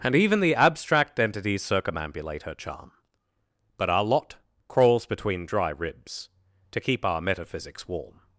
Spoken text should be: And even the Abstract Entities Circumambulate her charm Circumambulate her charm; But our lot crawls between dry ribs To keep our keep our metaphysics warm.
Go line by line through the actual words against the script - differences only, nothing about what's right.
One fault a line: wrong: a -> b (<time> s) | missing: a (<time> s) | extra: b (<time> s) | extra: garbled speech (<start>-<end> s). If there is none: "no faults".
missing: Circumambulate her charm (2.9 s)
missing: keep our (7.2 s)